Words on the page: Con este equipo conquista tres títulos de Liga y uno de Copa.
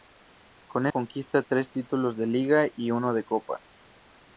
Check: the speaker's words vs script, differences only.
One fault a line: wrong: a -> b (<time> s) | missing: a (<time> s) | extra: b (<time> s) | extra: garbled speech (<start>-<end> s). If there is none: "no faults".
missing: este equipo (0.9 s)